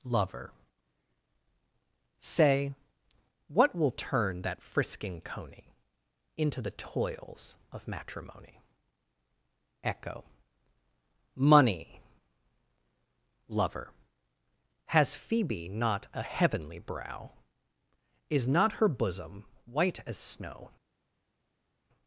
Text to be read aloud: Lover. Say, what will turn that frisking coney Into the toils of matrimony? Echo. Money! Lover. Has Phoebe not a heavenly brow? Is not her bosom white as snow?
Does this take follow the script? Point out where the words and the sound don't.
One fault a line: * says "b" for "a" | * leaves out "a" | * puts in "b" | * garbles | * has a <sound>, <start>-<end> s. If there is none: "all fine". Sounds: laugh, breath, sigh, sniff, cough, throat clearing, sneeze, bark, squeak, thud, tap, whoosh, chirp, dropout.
all fine